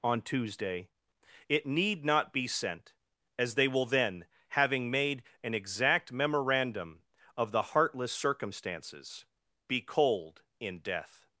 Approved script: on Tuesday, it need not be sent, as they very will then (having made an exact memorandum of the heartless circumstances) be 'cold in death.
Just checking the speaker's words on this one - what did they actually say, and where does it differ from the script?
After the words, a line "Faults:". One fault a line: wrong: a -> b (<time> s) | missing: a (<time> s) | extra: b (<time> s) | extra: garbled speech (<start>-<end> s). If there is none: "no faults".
on Tuesday, it need not be sent, as they will then (having made an exact memorandum of the heartless circumstances) be 'cold in death.
Faults:
missing: very (3.7 s)